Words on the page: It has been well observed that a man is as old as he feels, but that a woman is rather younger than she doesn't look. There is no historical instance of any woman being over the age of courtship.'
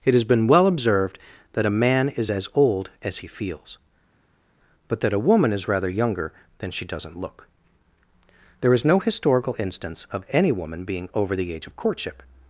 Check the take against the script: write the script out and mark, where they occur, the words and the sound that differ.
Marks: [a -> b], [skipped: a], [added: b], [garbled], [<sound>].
It has been well observed that a man is as old as he feels, but that a woman is rather younger than she doesn't look. There is no historical instance of any woman being over the age of courtship.'